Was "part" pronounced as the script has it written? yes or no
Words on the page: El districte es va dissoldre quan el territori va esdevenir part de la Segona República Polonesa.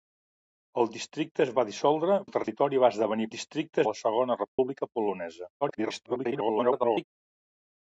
no